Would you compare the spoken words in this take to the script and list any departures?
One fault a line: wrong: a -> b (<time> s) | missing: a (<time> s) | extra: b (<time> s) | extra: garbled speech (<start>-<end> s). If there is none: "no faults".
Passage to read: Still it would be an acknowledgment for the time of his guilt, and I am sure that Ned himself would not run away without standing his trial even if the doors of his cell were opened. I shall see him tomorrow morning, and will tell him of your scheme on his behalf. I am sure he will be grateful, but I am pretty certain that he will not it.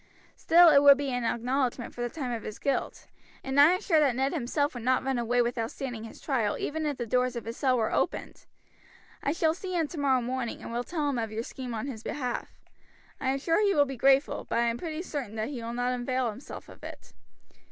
extra: avail himself of (15.9 s)